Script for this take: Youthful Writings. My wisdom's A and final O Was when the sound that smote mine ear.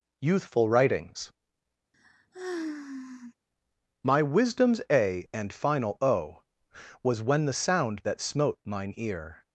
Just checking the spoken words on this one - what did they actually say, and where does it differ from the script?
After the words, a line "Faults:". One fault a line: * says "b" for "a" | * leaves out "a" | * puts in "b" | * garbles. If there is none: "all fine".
Youthful Writings. My wisdom's A and final O Was when the sound that smote mine ear.
Faults:
all fine